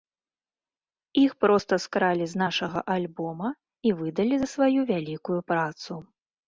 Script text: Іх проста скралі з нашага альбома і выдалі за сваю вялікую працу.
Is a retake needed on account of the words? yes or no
no